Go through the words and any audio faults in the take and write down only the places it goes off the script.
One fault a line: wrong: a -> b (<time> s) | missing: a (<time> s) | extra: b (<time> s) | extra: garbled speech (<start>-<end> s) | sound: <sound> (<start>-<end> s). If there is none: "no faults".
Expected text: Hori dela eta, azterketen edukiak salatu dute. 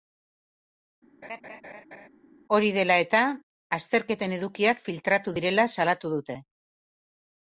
sound: laugh (1.2-2.1 s)
extra: filtratu direla (4.8 s)